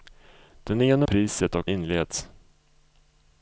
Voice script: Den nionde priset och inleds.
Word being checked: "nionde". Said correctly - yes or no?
yes